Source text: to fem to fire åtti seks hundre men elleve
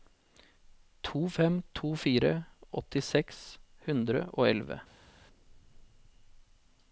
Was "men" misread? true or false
true